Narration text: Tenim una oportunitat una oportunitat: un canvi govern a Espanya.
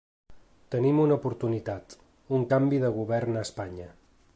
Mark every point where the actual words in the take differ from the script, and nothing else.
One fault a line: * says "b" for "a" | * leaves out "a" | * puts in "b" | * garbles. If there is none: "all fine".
* leaves out "una oportunitat"
* puts in "de"